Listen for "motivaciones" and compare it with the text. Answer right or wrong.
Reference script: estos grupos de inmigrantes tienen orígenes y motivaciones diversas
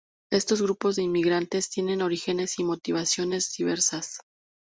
right